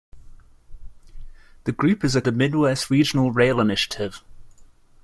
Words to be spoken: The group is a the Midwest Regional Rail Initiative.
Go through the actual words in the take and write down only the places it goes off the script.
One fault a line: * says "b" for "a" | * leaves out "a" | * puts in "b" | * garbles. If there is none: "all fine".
all fine